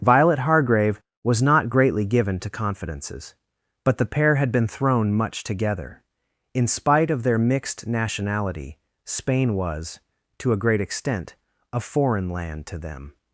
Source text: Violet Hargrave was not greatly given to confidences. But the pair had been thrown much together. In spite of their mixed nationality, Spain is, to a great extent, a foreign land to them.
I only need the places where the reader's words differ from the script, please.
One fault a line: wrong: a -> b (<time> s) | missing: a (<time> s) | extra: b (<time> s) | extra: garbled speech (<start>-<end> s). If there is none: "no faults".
wrong: is -> was (9.5 s)